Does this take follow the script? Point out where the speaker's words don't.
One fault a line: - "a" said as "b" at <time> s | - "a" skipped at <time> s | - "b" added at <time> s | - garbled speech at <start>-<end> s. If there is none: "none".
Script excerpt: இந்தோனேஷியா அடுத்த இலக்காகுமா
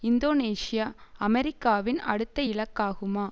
- "அமெரிக்காவின்" added at 1.2 s